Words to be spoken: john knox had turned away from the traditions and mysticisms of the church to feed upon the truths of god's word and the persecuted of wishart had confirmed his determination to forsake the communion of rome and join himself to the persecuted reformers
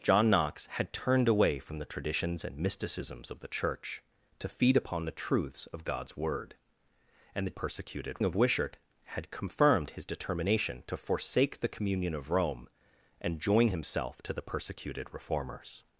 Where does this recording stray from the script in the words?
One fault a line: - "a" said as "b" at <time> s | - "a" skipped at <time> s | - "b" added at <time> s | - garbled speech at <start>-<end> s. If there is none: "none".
none